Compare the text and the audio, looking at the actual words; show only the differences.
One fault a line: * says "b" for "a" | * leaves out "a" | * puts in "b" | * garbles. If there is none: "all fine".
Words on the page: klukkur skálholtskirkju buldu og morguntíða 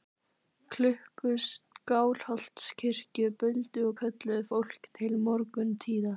* puts in "kölluðu fólk til"